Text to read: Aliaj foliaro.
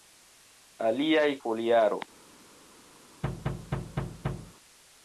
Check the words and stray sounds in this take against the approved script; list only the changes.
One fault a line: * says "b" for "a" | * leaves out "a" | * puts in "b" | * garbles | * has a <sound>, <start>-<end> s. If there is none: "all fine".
* has a thud, 3.2-4.5 s